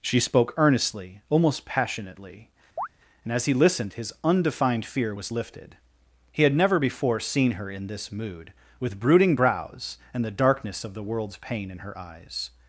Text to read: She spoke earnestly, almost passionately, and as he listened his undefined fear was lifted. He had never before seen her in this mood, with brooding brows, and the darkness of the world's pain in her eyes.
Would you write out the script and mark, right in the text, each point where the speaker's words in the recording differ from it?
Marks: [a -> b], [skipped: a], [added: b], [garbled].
She spoke earnestly, almost passionately, and as he listened his undefined fear was lifted. He had never before seen her in this mood, with brooding brows, and the darkness of the world's pain in her eyes.